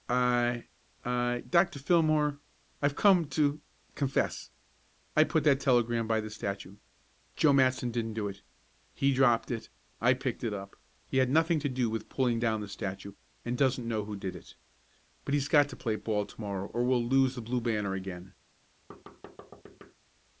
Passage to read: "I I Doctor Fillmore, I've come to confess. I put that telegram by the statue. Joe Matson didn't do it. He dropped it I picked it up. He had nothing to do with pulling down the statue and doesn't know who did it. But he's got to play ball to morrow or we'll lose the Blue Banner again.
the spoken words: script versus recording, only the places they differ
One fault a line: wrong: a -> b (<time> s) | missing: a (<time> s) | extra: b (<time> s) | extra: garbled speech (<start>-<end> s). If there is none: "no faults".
no faults